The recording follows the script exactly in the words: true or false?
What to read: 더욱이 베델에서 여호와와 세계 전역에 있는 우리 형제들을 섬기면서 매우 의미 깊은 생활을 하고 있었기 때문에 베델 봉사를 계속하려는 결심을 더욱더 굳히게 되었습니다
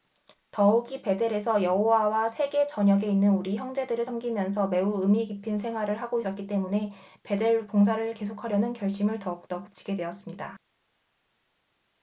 true